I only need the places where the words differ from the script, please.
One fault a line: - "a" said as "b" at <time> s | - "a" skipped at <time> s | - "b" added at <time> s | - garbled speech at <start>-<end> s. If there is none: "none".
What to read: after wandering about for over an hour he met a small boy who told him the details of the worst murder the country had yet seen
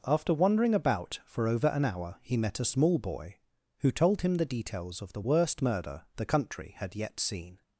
none